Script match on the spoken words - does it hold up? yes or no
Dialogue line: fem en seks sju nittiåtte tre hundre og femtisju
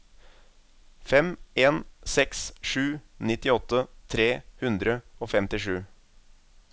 yes